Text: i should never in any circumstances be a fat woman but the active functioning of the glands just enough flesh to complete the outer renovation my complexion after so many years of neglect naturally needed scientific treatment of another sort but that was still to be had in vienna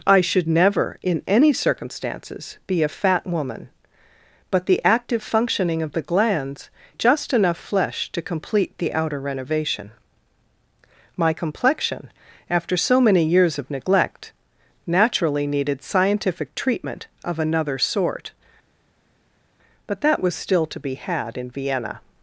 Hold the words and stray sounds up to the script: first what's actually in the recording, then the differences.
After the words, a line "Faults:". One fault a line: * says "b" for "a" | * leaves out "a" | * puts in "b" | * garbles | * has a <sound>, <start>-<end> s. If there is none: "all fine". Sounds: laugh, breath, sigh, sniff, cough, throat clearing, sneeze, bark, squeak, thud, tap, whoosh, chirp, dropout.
i should never in any circumstances be a fat woman but the active functioning of the glands just enough flesh to complete the outer renovation my complexion after so many years of neglect naturally needed scientific treatment of another sort but that was still to be had in vienna
Faults:
all fine